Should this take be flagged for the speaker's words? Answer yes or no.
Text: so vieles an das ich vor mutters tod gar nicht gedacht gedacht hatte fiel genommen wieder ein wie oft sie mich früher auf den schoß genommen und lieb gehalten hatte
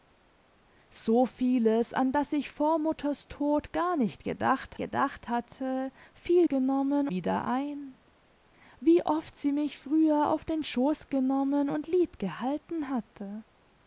no